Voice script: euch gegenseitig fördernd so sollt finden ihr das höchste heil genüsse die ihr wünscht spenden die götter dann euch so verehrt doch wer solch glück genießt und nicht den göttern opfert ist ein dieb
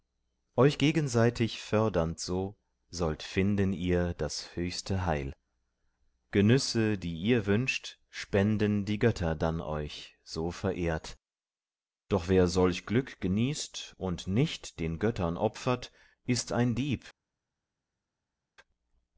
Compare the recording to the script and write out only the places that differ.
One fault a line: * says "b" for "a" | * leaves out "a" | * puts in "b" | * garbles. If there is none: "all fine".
all fine